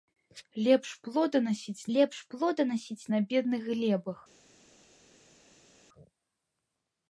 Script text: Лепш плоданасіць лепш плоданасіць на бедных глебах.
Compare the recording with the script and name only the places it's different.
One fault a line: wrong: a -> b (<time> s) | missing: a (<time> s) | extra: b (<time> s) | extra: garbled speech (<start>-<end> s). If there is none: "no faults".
no faults